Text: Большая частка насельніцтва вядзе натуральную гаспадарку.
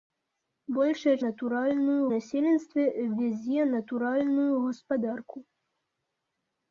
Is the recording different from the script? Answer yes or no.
yes